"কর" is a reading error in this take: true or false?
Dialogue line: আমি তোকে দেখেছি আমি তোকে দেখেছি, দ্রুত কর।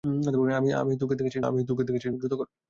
false